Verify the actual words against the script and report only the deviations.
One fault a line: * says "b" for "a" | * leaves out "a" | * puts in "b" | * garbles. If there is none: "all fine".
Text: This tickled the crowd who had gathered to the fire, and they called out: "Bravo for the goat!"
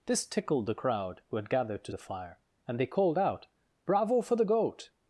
all fine